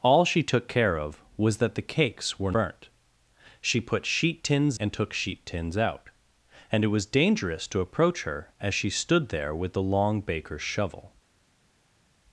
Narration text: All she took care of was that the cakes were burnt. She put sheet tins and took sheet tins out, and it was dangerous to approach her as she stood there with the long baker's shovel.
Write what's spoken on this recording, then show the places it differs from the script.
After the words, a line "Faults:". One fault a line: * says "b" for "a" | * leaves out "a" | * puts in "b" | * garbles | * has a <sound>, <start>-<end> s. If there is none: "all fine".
All she took care of was that the cakes were burnt. She put sheet tins and took sheet tins out, and it was dangerous to approach her as she stood there with the long baker's shovel.
Faults:
all fine